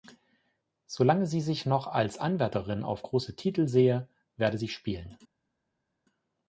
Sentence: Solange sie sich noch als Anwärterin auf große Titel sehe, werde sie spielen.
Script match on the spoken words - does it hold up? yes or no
yes